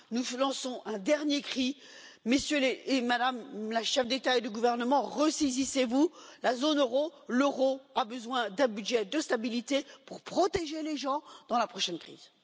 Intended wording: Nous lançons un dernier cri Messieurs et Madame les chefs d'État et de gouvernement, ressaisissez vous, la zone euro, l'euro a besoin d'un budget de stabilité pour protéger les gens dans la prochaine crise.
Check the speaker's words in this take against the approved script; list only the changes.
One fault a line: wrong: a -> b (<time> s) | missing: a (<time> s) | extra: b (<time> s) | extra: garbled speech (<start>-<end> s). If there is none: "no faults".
no faults